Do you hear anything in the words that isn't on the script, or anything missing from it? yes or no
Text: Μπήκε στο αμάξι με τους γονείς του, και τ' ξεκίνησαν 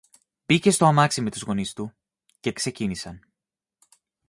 no